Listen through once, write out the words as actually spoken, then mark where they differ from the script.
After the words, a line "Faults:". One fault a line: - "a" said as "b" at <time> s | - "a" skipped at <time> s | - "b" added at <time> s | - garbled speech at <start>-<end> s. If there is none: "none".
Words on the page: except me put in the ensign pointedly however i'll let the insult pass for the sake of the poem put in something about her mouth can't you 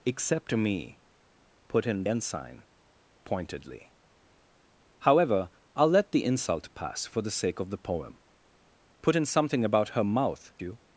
except me put in ensign pointedly however i'll let the insult pass for the sake of the poem put in something about her mouth you
Faults:
- "the" skipped at 2.0 s
- "can't" skipped at 10.5 s